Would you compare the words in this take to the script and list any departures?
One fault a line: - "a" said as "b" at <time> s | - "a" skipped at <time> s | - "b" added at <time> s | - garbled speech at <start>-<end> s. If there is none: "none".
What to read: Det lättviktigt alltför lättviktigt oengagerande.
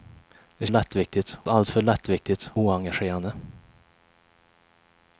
none